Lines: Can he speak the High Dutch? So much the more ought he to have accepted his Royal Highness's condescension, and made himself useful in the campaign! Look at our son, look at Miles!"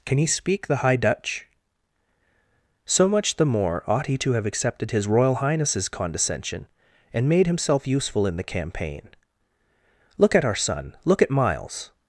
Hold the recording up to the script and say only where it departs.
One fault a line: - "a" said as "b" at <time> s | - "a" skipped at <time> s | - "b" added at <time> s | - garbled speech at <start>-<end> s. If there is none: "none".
none